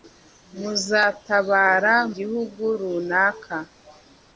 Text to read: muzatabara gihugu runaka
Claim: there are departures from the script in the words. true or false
false